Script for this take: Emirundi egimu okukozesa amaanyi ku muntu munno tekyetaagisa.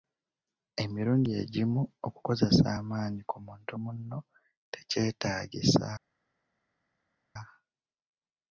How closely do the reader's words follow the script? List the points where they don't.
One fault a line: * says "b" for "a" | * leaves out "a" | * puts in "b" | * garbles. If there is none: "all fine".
all fine